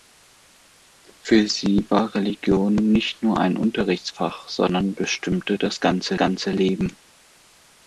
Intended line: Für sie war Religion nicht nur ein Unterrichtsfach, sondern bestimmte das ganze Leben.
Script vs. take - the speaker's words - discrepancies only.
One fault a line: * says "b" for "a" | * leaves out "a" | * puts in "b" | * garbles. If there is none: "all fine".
* puts in "ganze"